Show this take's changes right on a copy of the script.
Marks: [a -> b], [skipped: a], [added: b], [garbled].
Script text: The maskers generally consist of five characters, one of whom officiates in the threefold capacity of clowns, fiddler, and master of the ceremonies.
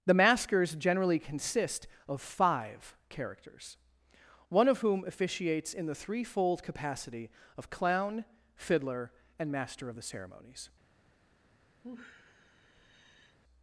The maskers generally consist of five characters, one of whom officiates in the threefold capacity of [clowns, -> clown] fiddler, and master of the ceremonies.